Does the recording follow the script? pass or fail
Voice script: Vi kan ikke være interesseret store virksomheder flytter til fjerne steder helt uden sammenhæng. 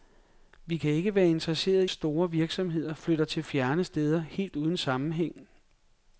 pass